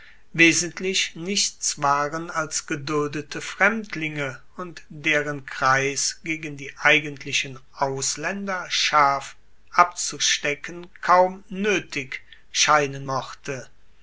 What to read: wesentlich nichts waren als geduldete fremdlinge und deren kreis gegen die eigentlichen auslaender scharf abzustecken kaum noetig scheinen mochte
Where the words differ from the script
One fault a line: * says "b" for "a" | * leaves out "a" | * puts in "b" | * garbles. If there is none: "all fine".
all fine